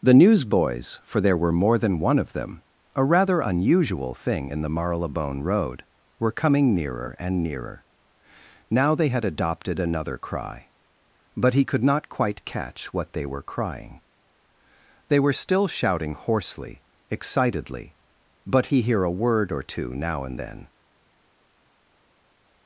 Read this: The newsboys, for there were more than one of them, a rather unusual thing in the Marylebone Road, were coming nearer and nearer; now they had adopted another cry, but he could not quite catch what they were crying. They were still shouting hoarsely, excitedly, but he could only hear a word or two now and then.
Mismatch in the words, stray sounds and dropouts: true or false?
true